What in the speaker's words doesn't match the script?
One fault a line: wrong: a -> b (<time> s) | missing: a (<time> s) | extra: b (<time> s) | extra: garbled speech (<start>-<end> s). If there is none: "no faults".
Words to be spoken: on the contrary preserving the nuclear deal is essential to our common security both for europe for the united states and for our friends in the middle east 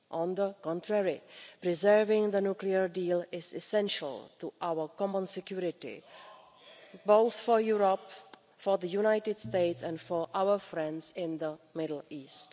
no faults